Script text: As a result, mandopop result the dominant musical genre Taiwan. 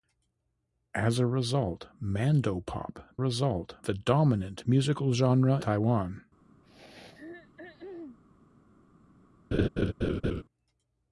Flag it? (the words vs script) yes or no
no